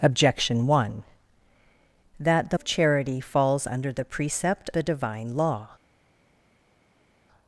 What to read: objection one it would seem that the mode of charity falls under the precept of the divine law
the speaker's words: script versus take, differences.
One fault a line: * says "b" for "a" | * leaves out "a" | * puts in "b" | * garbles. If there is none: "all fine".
* leaves out "it would seem"
* leaves out "mode"
* leaves out "of"